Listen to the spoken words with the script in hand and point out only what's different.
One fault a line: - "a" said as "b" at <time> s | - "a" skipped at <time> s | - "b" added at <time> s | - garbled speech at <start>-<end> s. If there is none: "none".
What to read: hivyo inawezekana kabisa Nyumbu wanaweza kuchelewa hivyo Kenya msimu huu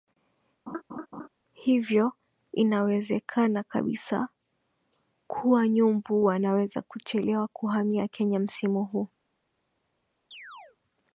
- "kuwa" added at 5.3 s
- "hivyo" said as "kuhamia" at 7.5 s